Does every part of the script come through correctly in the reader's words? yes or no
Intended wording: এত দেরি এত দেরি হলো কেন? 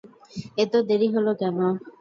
no